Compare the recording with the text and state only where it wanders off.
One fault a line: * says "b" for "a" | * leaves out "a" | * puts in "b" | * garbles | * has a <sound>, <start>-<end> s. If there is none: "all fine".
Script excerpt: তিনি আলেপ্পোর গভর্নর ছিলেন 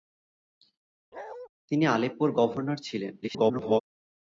* has a bark, 1.1-1.5 s
* garbles